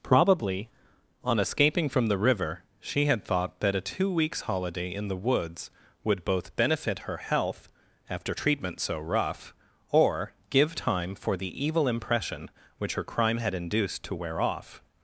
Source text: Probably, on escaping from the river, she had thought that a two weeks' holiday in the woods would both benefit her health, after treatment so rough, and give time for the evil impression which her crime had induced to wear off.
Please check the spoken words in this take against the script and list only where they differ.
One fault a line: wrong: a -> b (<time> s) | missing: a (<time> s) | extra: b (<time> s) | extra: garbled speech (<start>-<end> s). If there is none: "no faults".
wrong: and -> or (9.9 s)